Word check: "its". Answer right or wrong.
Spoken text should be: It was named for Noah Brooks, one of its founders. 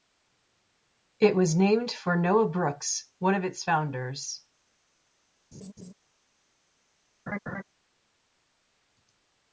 right